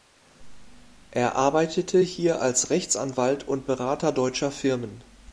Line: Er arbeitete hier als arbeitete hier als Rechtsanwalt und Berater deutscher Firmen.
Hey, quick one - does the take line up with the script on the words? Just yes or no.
no